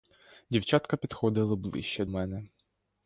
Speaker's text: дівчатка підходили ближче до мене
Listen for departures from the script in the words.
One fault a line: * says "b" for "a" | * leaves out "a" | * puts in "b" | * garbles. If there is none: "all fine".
* leaves out "до"